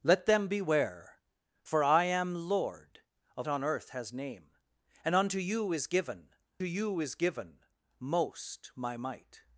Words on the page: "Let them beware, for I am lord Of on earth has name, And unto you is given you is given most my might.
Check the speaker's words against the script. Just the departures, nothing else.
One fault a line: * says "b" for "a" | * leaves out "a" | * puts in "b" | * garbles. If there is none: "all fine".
all fine